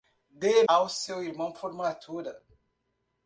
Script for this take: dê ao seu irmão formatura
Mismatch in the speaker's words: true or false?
false